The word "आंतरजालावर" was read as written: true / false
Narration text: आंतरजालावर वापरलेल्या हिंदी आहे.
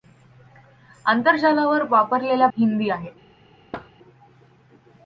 true